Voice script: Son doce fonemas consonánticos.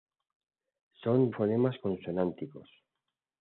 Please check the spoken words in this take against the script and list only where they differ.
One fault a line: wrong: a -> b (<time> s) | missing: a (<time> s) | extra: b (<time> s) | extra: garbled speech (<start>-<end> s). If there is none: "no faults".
missing: doce (1.3 s)